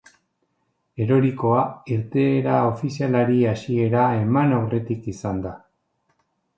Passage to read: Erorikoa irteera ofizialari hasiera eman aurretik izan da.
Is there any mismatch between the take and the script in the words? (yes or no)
no